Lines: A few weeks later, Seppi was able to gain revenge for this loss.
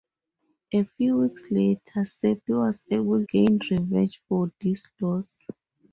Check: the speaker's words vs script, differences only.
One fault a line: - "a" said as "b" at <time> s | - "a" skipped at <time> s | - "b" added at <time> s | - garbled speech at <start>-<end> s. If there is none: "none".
- "to" skipped at 3.2 s